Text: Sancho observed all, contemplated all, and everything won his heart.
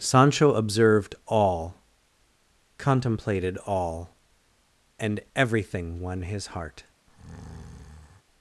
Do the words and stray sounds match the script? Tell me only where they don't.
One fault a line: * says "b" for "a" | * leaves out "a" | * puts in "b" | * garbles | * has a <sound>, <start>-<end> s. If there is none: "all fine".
* has a breath, 7.1-8.2 s